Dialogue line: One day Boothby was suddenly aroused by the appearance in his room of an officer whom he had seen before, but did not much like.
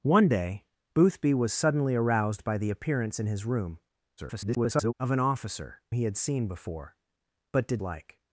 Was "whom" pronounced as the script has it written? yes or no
no